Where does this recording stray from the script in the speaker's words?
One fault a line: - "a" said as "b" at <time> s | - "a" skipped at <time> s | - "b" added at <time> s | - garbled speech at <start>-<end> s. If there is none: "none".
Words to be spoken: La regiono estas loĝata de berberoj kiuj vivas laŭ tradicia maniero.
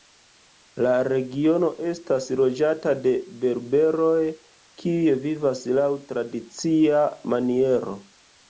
none